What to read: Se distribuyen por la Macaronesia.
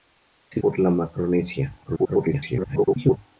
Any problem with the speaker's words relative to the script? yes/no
yes